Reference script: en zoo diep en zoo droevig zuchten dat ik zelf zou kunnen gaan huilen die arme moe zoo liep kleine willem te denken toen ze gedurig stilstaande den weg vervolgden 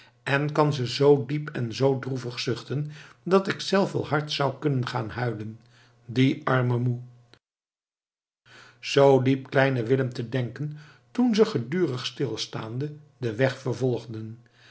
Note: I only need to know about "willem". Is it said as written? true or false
true